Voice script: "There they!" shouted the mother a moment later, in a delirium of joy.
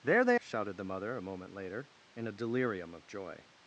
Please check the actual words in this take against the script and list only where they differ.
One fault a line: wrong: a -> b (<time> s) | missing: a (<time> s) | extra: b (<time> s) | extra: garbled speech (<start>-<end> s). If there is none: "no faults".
no faults